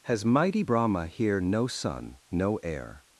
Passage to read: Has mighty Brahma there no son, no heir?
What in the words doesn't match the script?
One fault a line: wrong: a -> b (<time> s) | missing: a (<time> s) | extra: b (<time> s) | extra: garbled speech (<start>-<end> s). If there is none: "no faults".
wrong: there -> here (1.1 s)